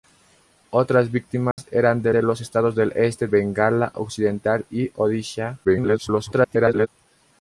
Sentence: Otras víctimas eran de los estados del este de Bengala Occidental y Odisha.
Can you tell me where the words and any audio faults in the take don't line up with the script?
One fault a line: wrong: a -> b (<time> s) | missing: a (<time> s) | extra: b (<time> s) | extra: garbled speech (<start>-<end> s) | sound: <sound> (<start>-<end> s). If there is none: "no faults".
sound: dropout (1.5-1.6 s)
extra: de (2.1 s)
missing: de (3.3 s)
extra: garbled speech (5.6-6.9 s)